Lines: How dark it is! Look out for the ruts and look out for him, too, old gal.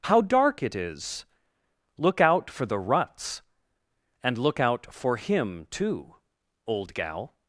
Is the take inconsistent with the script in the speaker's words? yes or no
no